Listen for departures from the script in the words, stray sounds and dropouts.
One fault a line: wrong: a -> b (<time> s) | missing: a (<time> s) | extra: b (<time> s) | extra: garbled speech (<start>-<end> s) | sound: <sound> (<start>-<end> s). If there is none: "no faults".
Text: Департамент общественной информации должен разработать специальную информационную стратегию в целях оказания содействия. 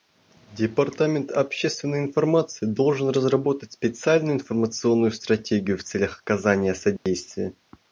sound: dropout (7.0-7.1 s)